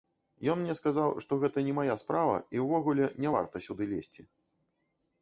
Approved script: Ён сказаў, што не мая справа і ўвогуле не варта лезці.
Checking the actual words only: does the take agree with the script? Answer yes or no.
no